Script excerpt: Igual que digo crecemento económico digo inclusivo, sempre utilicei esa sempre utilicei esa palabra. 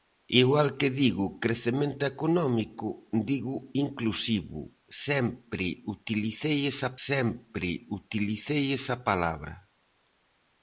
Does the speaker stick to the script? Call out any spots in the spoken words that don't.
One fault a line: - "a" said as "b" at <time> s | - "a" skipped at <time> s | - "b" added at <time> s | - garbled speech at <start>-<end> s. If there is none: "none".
none